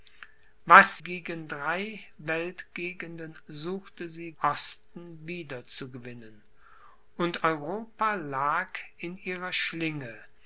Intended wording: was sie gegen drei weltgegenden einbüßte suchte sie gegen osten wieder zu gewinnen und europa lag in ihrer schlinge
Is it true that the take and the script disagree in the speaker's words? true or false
true